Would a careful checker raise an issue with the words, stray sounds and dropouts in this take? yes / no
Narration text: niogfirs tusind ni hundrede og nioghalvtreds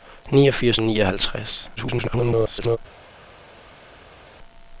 yes